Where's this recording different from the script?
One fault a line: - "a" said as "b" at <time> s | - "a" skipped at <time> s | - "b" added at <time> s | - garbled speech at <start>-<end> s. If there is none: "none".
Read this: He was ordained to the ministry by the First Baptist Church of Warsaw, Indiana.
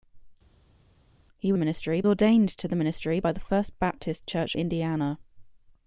- "was" said as "ministry" at 1.6 s
- "of Warsaw" skipped at 4.5 s